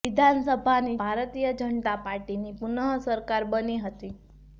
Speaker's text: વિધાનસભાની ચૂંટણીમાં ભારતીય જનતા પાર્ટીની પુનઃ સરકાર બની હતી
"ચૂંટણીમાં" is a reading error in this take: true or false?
true